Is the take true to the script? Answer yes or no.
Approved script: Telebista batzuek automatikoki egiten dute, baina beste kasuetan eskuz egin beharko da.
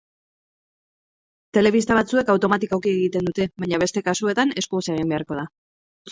yes